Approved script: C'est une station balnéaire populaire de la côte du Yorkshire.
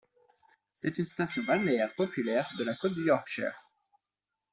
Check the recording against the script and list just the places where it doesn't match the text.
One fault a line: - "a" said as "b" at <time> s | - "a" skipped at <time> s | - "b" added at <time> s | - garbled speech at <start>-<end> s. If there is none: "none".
none